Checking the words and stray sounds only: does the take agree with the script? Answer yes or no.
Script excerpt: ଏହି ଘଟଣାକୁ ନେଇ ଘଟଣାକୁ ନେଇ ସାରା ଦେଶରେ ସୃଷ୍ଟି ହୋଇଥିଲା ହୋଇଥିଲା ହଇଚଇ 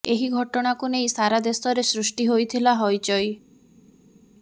no